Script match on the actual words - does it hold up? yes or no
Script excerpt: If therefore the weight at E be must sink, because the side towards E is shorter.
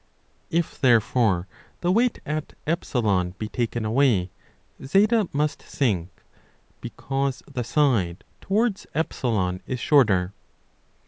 no